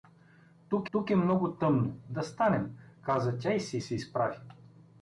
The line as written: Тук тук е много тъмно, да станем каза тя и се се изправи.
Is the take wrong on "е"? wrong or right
right